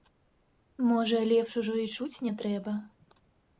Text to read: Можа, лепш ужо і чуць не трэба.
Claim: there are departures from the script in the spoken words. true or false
false